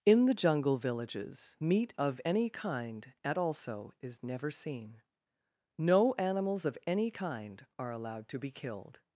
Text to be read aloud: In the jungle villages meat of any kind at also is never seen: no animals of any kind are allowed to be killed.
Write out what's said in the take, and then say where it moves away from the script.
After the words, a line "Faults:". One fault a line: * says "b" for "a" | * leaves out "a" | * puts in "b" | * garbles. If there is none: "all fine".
In the jungle villages meat of any kind at also is never seen: no animals of any kind are allowed to be killed.
Faults:
all fine